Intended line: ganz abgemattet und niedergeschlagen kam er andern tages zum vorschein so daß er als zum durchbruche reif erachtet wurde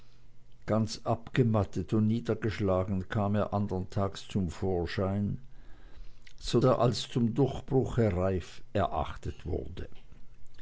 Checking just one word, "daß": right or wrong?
wrong